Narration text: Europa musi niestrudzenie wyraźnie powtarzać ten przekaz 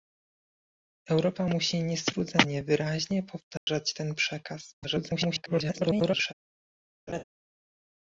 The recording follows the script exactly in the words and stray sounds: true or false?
false